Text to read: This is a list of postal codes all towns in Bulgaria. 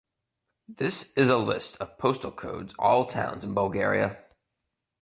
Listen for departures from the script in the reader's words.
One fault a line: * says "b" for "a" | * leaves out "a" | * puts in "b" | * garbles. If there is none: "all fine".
all fine